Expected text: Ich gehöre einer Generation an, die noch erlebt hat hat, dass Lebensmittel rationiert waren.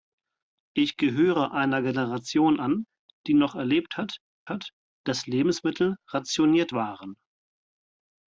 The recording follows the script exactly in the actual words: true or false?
true